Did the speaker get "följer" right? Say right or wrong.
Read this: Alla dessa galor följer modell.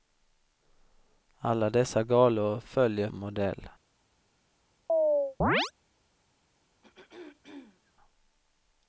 right